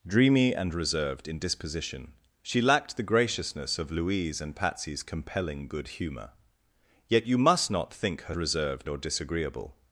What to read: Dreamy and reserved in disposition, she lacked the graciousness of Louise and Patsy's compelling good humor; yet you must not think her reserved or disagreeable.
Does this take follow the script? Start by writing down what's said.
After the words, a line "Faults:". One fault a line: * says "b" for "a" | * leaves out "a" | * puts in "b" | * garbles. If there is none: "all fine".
Dreamy and reserved in disposition, she lacked the graciousness of Louise and Patsy's compelling good humor; yet you must not think her reserved or disagreeable.
Faults:
all fine